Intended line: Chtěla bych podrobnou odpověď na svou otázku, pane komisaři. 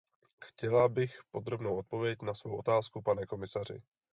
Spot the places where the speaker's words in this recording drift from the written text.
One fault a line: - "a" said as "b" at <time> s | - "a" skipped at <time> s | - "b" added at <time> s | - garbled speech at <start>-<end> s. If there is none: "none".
none